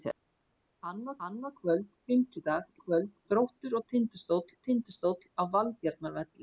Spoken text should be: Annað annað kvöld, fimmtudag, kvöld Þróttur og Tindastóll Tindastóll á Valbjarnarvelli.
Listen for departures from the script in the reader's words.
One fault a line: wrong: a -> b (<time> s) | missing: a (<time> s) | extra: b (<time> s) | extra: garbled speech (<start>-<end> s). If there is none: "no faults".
no faults